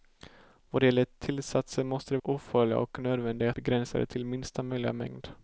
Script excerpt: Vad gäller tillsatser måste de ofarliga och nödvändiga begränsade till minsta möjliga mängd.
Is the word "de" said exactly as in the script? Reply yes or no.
yes